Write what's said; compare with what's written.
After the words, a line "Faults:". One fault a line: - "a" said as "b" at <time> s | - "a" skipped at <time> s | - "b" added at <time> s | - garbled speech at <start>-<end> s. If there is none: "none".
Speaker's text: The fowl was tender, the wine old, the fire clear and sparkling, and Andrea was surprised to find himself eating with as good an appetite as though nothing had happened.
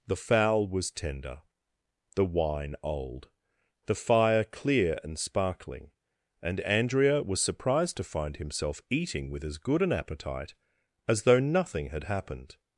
The fowl was tender, the wine old, the fire clear and sparkling, and Andrea was surprised to find himself eating with as good an appetite as though nothing had happened.
Faults:
none